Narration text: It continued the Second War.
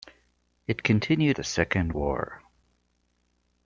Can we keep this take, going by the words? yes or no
yes